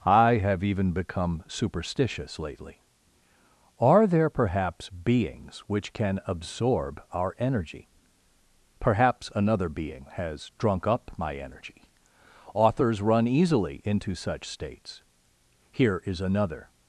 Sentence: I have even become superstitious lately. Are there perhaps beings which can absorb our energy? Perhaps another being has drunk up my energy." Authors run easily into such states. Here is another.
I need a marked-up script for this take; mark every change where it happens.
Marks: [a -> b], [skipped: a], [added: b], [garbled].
I have even become superstitious lately. Are there perhaps beings which can absorb our energy? Perhaps another being has drunk up my energy." Authors run easily into such states. Here is another.